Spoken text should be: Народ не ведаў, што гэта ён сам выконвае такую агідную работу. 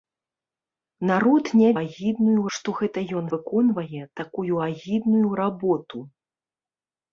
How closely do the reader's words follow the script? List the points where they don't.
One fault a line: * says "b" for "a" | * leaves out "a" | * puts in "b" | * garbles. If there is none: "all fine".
* says "агідную" for "ведаў"
* leaves out "сам"